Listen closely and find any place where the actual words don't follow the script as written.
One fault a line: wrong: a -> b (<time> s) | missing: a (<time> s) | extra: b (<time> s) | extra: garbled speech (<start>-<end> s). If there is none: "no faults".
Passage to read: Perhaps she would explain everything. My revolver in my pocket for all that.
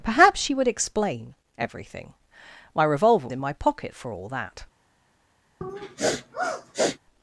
no faults